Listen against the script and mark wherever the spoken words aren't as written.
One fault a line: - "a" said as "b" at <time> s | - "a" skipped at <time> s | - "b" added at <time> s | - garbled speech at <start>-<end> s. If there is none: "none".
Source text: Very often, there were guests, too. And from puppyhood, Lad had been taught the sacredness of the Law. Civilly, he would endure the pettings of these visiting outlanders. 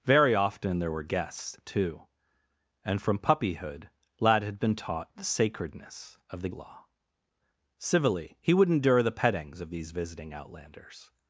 none